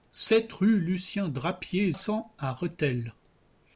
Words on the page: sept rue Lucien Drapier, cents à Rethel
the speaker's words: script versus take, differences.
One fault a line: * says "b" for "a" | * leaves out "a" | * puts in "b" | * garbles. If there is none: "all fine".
all fine